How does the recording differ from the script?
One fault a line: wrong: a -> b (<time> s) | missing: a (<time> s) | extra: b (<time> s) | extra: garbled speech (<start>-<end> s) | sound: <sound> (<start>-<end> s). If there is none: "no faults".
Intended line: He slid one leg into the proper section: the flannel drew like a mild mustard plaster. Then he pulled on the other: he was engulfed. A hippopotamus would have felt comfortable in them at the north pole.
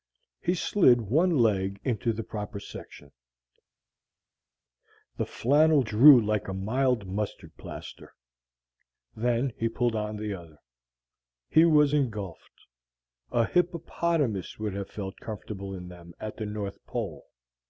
no faults